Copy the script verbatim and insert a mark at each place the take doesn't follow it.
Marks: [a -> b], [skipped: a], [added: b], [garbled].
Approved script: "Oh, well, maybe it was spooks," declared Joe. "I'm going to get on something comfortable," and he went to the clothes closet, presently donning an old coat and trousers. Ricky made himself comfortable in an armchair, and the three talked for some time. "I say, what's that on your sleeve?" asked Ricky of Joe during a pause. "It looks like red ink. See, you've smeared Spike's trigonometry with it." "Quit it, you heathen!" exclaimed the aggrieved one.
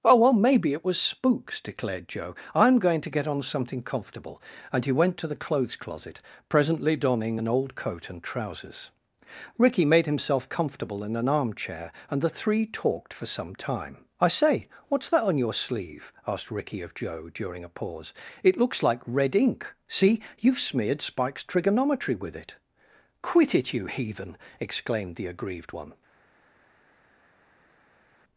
"Oh, well, maybe it was spooks," declared Joe. "I'm going to get on something comfortable," and he went to the clothes closet, presently donning an old coat and trousers. Ricky made himself comfortable in an armchair, and the three talked for some time. "I say, what's that on your sleeve?" asked Ricky of Joe during a pause. "It looks like red ink. See, you've smeared Spike's trigonometry with it." "Quit it, you heathen!" exclaimed the aggrieved one.